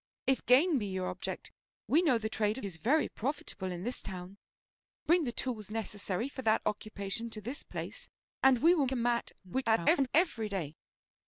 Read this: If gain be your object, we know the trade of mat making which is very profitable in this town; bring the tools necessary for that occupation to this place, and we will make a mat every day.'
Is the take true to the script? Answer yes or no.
no